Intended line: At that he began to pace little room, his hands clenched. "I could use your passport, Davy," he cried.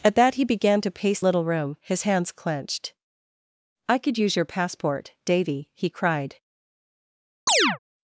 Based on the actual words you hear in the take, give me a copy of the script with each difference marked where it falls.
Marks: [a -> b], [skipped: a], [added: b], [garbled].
At that he began to pace little room, his hands clenched. "I could use your passport, Davy," he cried.